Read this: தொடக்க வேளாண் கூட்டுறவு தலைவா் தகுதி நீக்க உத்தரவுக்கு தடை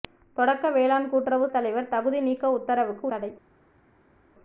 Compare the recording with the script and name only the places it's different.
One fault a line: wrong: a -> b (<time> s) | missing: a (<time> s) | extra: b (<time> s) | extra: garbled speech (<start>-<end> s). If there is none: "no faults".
no faults